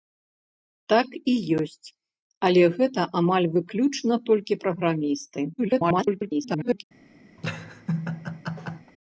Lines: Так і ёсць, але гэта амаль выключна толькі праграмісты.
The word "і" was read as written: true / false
true